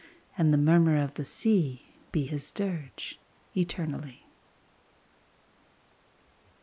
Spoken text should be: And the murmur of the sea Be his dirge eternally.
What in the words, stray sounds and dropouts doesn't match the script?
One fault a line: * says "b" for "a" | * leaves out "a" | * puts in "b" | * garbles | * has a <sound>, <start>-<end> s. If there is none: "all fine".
all fine